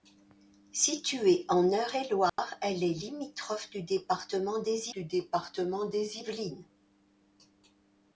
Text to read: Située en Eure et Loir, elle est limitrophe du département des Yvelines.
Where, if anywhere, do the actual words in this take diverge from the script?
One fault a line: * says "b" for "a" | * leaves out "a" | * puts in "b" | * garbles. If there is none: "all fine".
* puts in "du département des"